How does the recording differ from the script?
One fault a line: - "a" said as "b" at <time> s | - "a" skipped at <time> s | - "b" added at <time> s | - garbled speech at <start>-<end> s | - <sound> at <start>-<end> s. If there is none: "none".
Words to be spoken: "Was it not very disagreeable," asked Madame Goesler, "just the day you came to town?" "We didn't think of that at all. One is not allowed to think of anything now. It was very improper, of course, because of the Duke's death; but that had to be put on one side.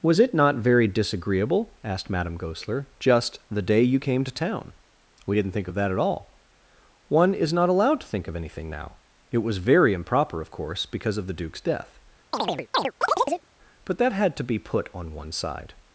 - chirp at 12.3-13.5 s